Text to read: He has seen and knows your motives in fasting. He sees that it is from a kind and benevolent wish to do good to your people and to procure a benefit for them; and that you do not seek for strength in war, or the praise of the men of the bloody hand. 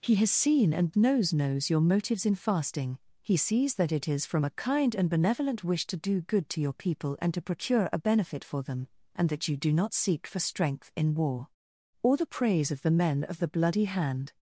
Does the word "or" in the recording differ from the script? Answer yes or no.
no